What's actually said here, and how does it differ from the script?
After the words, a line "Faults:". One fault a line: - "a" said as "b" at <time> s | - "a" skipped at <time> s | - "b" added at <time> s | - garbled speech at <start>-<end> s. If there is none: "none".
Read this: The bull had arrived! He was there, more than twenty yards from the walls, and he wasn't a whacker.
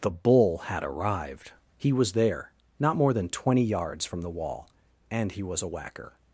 The bull had arrived! He was there, not more than twenty yards from the wall, and he was a whacker.
Faults:
- "not" added at 2.8 s
- "walls" said as "wall" at 4.3 s
- "wasn't" said as "was" at 5.4 s